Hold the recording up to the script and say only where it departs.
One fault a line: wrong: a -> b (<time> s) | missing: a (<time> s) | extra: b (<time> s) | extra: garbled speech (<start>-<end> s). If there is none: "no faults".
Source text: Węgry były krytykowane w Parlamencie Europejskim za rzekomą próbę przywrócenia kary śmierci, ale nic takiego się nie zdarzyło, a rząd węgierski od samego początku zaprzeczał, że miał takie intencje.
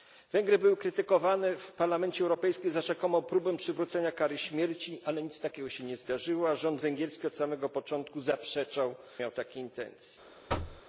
missing: że (8.9 s)